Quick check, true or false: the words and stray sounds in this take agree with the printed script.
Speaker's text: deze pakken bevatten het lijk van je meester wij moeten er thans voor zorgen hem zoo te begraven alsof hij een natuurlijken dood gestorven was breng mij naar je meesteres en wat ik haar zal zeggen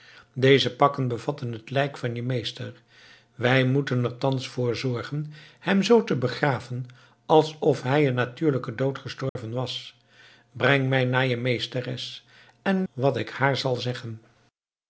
false